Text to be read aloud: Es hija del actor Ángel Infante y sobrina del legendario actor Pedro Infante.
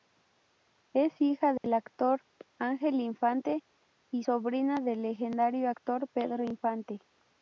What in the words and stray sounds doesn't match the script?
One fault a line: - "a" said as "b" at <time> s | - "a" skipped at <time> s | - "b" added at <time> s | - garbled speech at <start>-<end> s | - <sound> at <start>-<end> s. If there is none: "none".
- dropout at 1.6-1.6 s